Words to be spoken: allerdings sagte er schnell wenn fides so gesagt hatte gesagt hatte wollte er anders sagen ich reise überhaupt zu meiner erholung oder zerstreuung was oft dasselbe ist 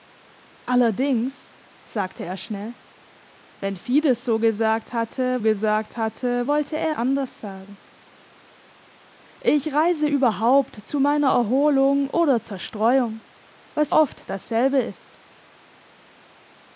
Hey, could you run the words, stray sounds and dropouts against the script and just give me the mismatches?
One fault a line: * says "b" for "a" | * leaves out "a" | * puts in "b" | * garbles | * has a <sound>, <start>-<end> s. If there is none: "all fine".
all fine